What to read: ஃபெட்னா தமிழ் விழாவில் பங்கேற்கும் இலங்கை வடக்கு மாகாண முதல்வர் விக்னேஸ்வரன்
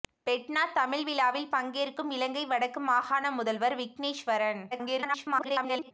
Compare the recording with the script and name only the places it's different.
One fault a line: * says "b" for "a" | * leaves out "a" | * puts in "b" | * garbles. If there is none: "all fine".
* garbles